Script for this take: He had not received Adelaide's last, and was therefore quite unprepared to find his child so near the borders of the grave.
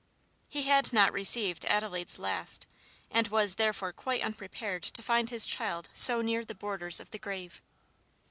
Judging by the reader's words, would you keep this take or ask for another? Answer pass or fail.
pass